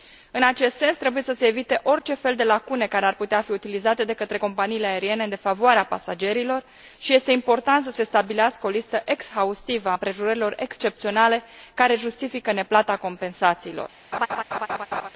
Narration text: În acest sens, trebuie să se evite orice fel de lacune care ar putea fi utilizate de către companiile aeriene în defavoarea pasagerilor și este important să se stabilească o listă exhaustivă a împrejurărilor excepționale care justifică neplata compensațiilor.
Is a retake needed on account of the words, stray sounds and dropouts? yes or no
yes